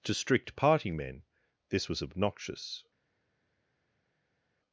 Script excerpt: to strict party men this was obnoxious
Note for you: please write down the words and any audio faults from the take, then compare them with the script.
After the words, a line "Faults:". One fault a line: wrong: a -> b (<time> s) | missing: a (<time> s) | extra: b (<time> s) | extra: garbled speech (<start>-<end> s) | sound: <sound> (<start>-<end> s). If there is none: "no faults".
to strict party men this was obnoxious
Faults:
no faults